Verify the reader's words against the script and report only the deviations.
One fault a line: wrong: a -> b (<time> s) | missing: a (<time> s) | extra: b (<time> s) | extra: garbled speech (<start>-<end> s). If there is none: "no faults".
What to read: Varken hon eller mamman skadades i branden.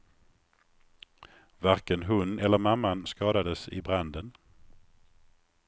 no faults